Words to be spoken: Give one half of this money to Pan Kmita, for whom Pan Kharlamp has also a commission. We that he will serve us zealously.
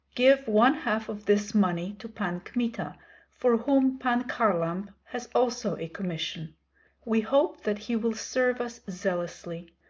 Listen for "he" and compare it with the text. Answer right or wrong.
right